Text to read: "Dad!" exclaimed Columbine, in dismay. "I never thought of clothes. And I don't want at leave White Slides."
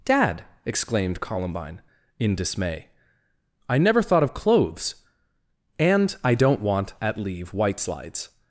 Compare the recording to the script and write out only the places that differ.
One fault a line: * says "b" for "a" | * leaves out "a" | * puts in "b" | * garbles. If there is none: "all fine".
all fine